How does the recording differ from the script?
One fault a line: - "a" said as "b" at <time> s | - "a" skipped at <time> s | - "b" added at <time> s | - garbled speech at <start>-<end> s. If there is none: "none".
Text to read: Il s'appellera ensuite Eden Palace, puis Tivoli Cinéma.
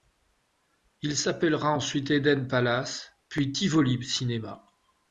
none